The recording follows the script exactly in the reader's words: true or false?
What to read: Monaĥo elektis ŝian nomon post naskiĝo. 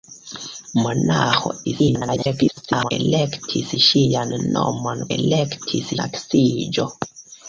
false